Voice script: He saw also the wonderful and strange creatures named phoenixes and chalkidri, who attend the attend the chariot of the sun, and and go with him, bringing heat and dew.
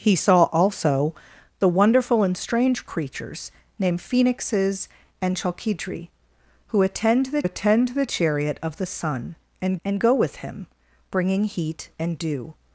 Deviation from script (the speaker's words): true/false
false